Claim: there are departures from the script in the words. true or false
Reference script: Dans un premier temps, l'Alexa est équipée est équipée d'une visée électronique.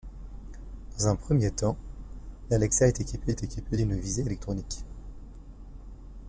false